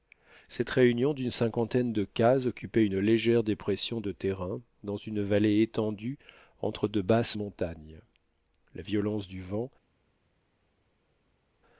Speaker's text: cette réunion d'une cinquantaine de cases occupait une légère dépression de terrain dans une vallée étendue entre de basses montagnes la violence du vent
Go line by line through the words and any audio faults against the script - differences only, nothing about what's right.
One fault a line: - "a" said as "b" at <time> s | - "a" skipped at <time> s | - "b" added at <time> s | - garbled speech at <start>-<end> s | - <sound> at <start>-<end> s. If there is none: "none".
none